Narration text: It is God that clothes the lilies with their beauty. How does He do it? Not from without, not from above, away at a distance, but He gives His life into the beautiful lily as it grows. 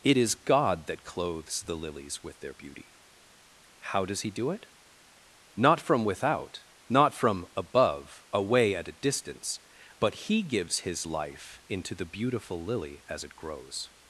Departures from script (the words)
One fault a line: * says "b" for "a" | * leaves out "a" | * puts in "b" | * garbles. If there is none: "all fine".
all fine